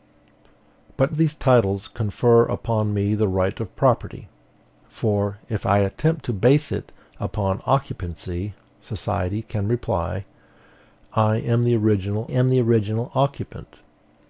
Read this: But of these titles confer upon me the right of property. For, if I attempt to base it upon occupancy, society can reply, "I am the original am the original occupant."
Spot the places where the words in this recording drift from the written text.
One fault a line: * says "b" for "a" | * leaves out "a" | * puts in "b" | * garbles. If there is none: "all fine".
all fine